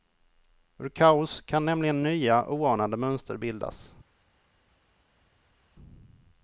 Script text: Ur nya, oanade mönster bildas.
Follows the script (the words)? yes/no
no